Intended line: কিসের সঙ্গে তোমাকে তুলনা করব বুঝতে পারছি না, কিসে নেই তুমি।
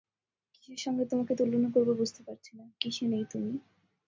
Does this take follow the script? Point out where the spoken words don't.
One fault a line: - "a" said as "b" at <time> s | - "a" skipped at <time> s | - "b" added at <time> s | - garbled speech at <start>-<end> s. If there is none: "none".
none